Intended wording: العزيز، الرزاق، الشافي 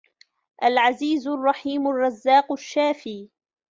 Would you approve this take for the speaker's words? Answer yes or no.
no